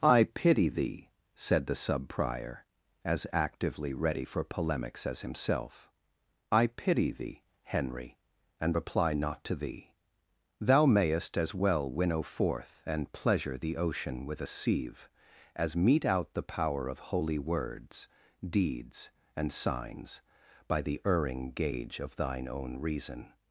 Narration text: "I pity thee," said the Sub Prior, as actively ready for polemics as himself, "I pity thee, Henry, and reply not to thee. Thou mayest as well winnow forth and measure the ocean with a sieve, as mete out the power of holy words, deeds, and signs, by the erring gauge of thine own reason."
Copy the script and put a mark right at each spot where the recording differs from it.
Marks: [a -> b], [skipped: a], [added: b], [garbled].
"I pity thee," said the Sub Prior, as actively ready for polemics as himself, "I pity thee, Henry, and reply not to thee. Thou mayest as well winnow forth and [measure -> pleasure] the ocean with a sieve, as mete out the power of holy words, deeds, and signs, by the erring gauge of thine own reason."